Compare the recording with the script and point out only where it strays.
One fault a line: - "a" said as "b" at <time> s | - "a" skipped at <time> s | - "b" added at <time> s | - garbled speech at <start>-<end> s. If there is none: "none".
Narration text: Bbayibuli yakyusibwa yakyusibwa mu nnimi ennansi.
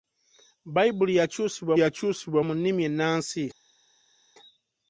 none